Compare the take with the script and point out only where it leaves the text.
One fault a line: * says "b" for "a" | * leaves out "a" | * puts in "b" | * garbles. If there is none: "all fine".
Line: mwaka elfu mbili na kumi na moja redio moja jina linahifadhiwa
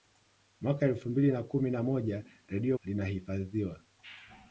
* leaves out "moja jina"